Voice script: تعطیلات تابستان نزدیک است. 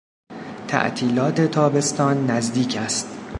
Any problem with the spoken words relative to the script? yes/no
no